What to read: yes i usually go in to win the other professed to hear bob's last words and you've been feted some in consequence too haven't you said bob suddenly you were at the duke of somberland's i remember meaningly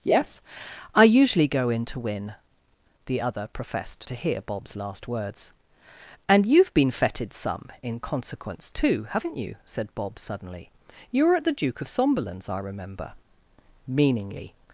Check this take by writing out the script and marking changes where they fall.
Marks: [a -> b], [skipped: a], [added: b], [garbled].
yes i usually go in to win the other professed to hear bob's last words and you've been feted some in consequence too haven't you said bob suddenly you were at the duke of somberland's i remember meaningly